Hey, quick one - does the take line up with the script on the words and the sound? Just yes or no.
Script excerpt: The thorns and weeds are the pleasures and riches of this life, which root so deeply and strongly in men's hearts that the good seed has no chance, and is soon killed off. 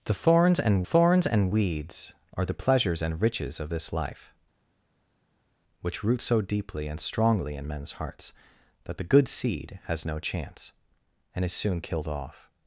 no